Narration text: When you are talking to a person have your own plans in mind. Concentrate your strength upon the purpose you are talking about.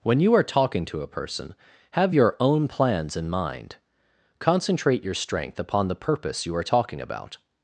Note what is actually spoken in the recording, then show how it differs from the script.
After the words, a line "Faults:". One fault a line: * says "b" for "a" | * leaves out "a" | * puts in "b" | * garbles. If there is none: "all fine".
When you are talking to a person have your own plans in mind. Concentrate your strength upon the purpose you are talking about.
Faults:
all fine